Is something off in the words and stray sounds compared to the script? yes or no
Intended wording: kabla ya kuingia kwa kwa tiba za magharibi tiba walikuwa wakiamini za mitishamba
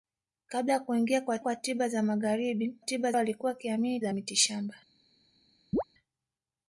yes